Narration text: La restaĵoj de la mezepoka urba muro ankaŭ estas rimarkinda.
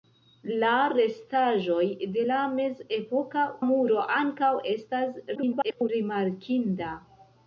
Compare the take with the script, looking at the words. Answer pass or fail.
fail